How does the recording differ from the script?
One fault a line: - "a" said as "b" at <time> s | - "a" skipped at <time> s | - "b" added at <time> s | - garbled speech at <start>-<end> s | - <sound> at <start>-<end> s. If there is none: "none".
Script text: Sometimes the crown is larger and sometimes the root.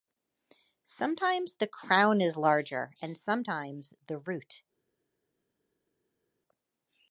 none